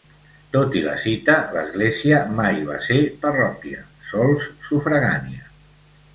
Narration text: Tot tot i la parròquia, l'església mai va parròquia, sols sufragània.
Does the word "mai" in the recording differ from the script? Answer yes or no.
no